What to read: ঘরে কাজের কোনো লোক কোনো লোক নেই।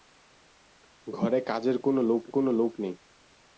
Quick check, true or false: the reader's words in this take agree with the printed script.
true